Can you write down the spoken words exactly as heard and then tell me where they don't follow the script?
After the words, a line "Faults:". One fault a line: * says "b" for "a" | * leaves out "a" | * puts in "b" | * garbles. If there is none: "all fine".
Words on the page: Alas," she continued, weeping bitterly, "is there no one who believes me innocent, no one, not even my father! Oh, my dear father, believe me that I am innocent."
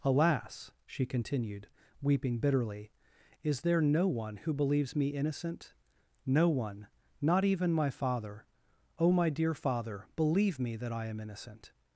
Alas," she continued, weeping bitterly, "is there no one who believes me innocent, no one, not even my father! Oh, my dear father, believe me that I am innocent."
Faults:
all fine